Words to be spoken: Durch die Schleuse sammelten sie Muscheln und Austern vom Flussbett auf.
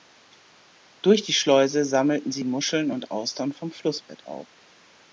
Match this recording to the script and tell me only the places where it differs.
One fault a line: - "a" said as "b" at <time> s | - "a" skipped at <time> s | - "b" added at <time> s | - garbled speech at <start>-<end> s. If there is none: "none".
none